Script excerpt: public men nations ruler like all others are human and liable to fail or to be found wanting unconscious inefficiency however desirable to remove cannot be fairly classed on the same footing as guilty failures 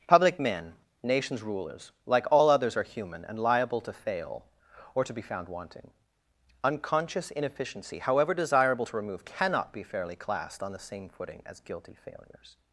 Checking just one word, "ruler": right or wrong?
wrong